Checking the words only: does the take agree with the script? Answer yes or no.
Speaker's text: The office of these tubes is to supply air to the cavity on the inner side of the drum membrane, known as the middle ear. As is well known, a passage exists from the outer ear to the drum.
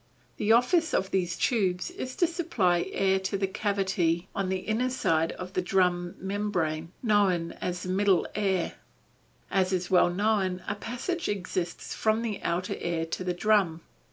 yes